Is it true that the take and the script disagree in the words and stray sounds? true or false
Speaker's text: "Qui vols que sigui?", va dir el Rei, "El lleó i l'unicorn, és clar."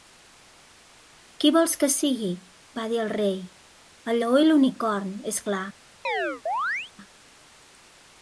true